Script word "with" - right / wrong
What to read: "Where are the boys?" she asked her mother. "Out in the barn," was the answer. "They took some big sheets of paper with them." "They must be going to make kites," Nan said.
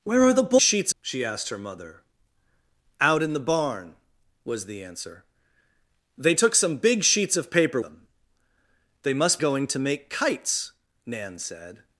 wrong